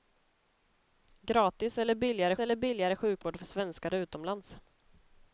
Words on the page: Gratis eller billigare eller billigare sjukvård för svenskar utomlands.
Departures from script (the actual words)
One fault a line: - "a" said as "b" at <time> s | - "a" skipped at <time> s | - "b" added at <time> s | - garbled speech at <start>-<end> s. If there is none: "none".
none